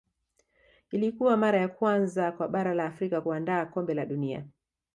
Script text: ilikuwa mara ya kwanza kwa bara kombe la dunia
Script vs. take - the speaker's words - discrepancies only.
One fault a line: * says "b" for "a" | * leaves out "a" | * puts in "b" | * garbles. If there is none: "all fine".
* puts in "la afrika kuandaa"